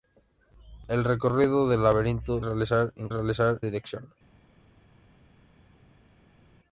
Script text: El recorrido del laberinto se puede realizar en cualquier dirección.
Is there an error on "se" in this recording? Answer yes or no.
yes